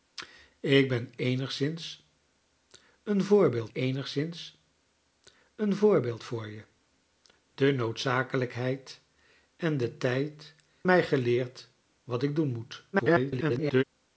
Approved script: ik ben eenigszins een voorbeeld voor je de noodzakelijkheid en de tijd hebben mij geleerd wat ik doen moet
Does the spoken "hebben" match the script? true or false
false